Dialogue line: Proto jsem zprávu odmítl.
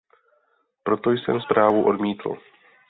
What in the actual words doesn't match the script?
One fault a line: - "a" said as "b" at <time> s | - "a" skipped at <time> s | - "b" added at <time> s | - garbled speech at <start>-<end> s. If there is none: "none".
none